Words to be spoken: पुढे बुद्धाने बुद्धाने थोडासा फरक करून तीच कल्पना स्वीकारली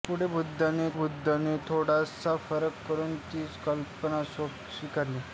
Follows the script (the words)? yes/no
yes